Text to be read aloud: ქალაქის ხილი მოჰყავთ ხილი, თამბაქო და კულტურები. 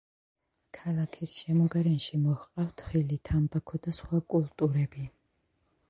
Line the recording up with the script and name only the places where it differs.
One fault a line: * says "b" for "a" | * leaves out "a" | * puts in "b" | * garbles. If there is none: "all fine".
* says "შემოგარენში" for "ხილი"
* puts in "სხვა"